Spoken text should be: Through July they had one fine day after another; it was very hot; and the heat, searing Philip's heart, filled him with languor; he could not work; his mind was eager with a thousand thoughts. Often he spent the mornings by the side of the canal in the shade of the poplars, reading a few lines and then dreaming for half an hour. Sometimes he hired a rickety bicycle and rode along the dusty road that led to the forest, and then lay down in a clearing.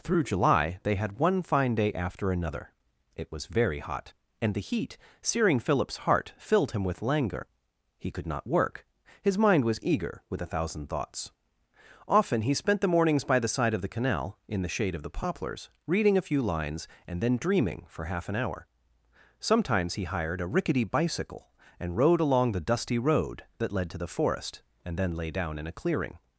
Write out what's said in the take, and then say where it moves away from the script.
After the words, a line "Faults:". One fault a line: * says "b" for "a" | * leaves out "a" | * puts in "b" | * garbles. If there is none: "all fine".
Through July they had one fine day after another; it was very hot; and the heat, searing Philip's heart, filled him with languor; he could not work; his mind was eager with a thousand thoughts. Often he spent the mornings by the side of the canal in the shade of the poplars, reading a few lines and then dreaming for half an hour. Sometimes he hired a rickety bicycle and rode along the dusty road that led to the forest, and then lay down in a clearing.
Faults:
all fine